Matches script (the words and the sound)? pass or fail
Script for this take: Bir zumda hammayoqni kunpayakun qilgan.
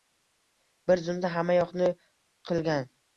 fail